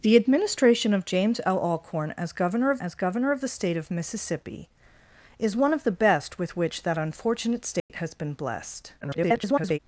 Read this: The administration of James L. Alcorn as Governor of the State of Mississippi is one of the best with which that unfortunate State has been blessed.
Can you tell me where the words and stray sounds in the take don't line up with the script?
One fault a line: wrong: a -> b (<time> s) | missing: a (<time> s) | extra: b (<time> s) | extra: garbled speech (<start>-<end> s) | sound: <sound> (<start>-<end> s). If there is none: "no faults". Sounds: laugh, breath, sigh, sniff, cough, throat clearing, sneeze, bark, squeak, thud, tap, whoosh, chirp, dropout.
extra: as Governor of (2.8 s)
sound: dropout (7.8-7.9 s)
extra: garbled speech (9.0-9.8 s)